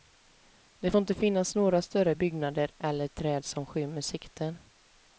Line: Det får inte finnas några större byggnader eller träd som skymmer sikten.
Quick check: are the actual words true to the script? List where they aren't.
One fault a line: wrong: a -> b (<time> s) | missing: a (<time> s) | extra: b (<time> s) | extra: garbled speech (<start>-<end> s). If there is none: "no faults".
no faults